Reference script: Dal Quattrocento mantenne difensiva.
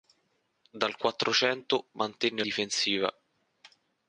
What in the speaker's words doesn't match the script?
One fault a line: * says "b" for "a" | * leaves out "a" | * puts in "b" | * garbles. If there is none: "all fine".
all fine